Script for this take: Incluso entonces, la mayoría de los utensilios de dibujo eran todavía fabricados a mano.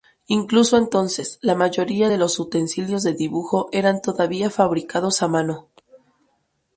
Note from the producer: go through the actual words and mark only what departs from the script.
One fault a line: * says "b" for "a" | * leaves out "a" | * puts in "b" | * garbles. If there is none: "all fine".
all fine